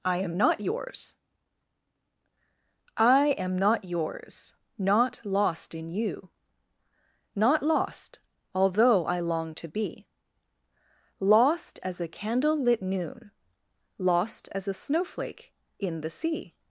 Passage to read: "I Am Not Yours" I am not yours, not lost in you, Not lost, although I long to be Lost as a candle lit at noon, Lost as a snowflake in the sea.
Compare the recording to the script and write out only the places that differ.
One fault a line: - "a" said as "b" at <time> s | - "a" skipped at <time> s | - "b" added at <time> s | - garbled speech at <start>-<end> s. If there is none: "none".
- "at" skipped at 12.8 s